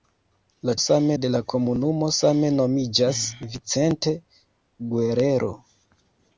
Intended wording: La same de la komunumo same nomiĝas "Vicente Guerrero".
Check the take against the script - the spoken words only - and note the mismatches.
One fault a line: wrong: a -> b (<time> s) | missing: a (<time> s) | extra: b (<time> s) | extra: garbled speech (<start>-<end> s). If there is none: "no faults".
no faults